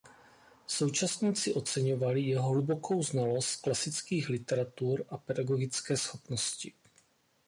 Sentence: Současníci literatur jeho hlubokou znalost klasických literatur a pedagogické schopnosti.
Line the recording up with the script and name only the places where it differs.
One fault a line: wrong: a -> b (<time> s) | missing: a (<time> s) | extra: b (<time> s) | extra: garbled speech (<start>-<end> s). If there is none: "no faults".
wrong: literatur -> oceňovali (1.5 s)